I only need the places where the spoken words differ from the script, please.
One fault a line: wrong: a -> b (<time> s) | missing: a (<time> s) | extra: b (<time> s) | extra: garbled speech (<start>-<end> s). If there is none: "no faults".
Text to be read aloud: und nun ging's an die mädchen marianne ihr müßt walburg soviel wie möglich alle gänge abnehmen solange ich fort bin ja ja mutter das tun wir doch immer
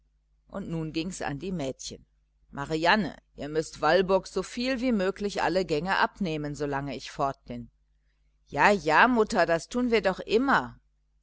no faults